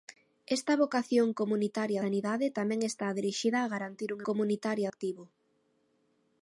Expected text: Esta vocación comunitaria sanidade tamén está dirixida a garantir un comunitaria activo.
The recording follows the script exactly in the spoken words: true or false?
true